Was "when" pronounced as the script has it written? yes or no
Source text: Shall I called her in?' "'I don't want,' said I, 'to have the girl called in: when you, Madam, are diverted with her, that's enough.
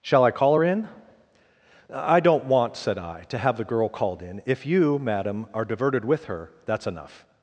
no